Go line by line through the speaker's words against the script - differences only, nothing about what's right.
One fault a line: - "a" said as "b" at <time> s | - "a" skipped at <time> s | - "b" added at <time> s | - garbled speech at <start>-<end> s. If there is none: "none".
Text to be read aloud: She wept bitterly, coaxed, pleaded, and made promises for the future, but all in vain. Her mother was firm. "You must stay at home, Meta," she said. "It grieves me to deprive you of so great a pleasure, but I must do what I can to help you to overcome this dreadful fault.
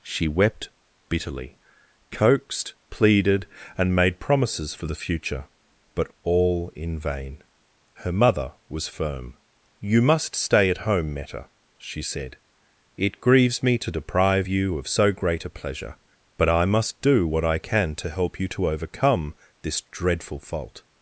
none